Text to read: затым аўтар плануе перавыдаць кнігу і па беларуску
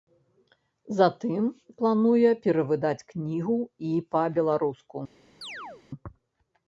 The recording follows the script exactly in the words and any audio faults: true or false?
false